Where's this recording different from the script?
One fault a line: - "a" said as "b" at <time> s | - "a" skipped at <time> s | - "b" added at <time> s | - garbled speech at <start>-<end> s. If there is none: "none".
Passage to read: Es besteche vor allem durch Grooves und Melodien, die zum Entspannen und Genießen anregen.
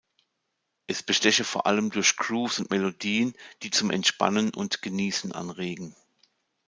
none